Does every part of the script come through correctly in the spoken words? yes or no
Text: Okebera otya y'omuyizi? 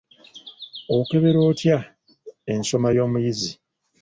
no